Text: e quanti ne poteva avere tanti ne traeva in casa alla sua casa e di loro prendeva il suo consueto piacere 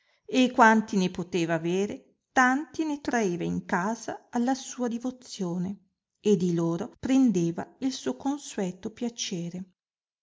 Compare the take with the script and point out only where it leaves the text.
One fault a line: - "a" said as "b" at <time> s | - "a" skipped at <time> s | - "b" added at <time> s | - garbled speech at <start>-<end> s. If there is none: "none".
- "casa" said as "divozione" at 4.9 s